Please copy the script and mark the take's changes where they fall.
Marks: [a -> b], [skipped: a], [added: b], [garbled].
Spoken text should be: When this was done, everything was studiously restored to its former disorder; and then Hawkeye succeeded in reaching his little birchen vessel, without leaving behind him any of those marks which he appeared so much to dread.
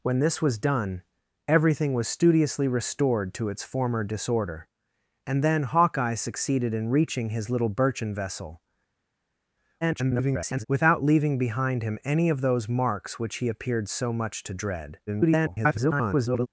When this was done, everything was studiously restored to its former disorder; and then Hawkeye succeeded in reaching his little birchen vessel, [garbled] without leaving behind him any of those marks which he appeared so much to dread. [garbled]